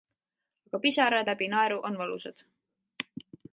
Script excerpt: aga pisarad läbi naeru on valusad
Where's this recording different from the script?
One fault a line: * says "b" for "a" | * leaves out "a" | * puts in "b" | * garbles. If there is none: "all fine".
all fine